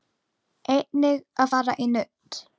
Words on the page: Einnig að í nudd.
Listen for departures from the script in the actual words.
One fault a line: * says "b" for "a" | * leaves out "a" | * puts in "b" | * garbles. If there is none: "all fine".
* puts in "fara"